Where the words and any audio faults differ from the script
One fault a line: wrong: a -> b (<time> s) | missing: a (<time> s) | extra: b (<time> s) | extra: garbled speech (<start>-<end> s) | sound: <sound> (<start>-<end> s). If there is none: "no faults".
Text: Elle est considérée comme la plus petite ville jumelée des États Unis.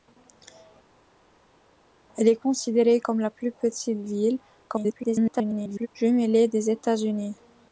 extra: garbled speech (4.7-5.9 s)